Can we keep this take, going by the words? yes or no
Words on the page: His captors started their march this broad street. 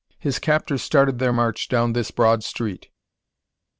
no